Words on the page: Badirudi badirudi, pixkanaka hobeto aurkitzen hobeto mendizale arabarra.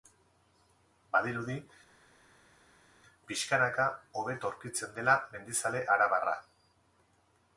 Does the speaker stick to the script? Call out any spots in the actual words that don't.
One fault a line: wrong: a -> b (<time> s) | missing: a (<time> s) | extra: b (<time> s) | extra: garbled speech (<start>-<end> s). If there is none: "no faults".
missing: badirudi (1.6 s)
wrong: hobeto -> dela (5.0 s)